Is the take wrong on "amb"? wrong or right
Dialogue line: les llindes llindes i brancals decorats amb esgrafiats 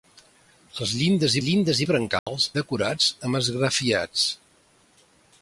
right